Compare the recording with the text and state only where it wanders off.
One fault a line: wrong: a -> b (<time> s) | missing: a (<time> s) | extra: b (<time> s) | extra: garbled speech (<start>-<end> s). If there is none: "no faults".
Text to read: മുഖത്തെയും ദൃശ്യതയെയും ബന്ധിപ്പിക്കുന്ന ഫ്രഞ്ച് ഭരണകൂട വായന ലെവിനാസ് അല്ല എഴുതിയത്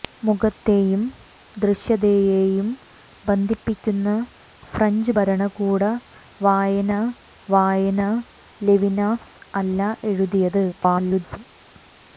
extra: വായന (7.5 s)
extra: garbled speech (10.7-11.4 s)